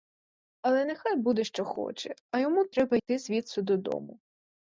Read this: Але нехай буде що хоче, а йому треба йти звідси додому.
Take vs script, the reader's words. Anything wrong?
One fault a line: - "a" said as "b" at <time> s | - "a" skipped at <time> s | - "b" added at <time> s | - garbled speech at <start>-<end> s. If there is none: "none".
none